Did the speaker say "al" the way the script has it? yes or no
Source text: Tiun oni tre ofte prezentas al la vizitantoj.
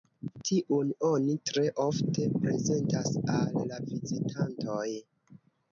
yes